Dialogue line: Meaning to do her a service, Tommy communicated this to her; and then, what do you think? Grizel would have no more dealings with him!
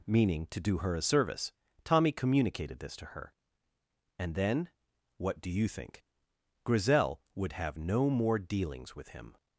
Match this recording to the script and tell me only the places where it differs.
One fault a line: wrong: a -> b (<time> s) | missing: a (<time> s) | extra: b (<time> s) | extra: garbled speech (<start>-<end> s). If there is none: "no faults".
no faults